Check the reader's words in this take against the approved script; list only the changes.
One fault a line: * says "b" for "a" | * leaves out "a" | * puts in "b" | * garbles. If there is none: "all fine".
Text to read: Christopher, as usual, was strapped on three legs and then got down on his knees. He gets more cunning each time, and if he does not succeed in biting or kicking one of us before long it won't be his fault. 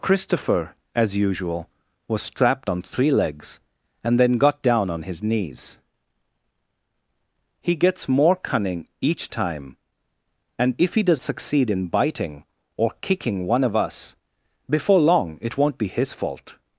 * leaves out "not"